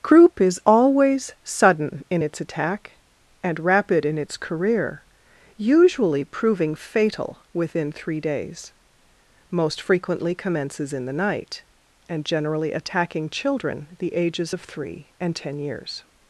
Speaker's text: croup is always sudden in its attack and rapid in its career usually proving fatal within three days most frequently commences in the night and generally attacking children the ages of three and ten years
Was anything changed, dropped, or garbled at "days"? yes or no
no